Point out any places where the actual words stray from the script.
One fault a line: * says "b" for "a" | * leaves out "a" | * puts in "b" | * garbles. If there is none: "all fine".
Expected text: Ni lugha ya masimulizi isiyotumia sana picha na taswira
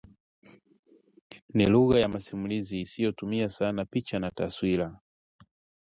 all fine